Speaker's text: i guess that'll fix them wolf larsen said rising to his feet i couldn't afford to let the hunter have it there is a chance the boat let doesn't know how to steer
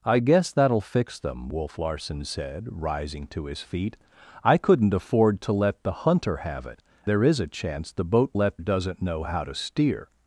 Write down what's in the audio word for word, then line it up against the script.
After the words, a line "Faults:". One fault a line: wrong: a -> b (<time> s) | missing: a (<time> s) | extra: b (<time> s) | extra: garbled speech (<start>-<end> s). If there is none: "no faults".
i guess that'll fix them wolf larsen said rising to his feet i couldn't afford to let the hunter have it there is a chance the boat let doesn't know how to steer
Faults:
no faults